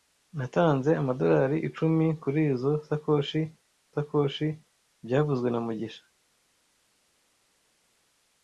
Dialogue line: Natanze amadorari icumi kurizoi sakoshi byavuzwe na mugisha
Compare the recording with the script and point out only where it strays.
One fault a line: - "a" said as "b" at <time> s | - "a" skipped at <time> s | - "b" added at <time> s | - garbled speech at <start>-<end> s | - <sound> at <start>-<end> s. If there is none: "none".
- "sakoshi" added at 3.9 s